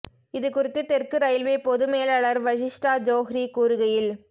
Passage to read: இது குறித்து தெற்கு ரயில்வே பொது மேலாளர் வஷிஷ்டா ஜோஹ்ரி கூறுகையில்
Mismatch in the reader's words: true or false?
false